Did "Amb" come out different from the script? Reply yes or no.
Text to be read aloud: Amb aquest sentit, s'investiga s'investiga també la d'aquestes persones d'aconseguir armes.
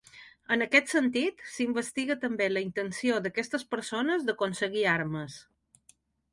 yes